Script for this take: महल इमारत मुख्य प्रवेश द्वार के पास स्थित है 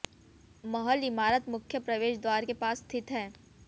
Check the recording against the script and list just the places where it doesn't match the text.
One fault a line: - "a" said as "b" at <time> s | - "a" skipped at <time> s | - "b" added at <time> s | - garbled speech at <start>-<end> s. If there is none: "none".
none